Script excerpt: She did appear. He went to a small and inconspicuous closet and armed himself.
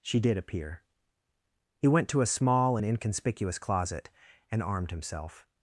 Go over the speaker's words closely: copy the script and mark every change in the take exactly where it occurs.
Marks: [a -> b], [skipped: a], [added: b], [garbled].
She did appear. He went to a small and inconspicuous closet and armed himself.